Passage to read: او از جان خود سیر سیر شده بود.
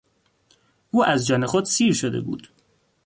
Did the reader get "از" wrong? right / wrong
right